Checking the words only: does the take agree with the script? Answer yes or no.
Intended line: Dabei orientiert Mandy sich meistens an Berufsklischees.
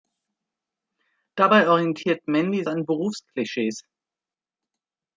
no